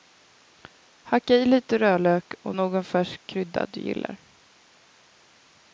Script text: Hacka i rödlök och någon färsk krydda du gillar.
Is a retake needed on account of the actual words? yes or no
yes